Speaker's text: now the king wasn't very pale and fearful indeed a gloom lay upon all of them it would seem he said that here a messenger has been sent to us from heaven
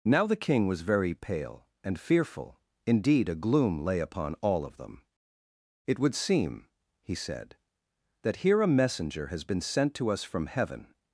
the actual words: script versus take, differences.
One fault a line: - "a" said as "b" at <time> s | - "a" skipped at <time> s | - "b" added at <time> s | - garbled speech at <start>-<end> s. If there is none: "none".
- "wasn't" said as "was" at 0.7 s